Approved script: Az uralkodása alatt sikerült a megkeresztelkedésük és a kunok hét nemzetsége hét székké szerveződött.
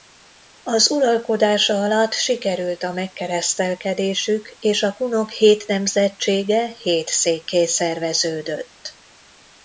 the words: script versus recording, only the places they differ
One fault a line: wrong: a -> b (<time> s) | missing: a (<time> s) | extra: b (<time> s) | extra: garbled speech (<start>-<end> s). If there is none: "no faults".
no faults